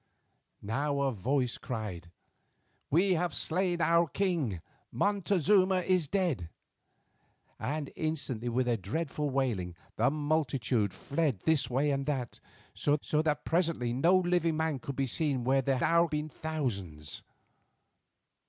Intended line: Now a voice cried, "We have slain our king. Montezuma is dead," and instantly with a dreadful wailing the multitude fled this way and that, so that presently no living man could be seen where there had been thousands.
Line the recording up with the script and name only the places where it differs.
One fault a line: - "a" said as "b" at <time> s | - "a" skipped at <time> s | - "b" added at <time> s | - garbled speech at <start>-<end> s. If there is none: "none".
- "so" added at 13.0 s
- "had" said as "our" at 15.8 s